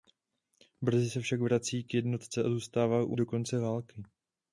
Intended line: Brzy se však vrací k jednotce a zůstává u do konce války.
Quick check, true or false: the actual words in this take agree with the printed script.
true